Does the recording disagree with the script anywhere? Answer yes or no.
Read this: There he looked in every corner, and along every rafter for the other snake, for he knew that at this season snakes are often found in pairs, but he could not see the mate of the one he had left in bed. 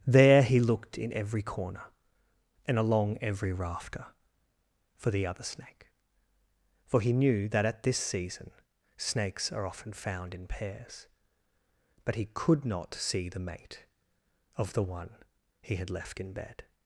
no